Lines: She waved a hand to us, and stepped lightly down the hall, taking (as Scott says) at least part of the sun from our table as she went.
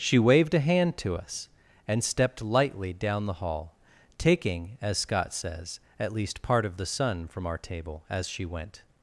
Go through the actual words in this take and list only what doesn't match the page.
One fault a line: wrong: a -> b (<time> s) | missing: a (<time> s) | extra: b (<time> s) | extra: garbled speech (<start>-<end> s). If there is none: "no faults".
no faults